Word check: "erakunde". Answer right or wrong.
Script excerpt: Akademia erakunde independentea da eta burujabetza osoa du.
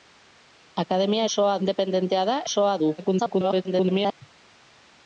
wrong